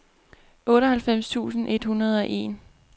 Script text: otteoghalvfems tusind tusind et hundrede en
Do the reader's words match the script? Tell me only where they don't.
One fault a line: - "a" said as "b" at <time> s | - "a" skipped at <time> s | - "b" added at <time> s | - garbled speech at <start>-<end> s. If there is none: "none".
- "tusind" skipped at 1.7 s
- "og" added at 2.2 s